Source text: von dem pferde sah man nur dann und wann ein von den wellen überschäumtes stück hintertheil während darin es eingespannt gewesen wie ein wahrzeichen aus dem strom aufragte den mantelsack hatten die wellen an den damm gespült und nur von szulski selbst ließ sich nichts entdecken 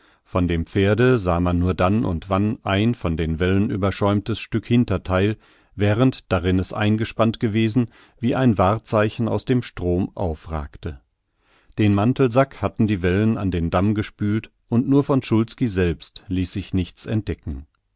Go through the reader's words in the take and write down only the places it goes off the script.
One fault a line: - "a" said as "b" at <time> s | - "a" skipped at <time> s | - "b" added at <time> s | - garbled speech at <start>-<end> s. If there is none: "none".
none